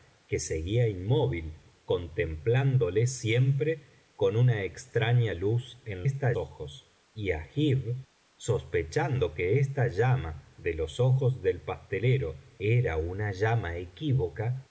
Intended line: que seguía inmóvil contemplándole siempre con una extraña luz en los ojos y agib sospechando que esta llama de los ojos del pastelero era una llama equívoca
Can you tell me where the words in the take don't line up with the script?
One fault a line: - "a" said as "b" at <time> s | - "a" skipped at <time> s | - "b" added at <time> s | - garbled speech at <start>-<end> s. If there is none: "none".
- "los" said as "esta" at 6.0 s